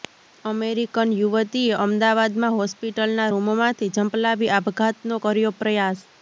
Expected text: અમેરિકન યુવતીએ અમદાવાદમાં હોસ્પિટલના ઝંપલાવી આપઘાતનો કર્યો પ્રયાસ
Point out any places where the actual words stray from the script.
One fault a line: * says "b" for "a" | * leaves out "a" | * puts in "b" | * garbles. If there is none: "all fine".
* puts in "રૂમમાંથી"